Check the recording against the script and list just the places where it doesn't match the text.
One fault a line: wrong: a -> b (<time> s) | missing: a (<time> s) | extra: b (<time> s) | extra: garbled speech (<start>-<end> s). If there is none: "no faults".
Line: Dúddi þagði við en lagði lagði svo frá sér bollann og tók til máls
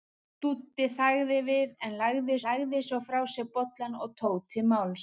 no faults